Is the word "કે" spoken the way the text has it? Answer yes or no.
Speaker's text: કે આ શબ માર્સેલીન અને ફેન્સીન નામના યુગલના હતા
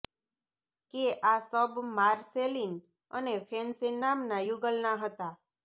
yes